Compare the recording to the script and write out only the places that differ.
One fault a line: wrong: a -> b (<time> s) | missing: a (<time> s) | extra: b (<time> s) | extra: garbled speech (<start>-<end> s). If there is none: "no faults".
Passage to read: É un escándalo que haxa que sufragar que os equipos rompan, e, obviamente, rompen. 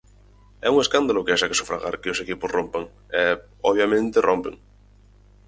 no faults